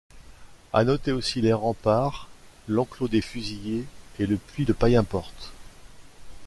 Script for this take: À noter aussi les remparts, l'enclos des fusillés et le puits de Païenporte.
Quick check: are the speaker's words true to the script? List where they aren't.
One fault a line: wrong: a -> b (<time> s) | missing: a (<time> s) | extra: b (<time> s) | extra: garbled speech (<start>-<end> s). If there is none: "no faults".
no faults